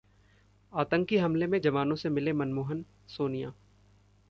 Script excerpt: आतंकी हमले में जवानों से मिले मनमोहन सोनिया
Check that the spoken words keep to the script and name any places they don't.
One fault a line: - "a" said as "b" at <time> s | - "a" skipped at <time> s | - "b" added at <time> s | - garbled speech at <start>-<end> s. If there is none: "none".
none